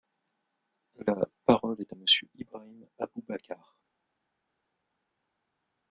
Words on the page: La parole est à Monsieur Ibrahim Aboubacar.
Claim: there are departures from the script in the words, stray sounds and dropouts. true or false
false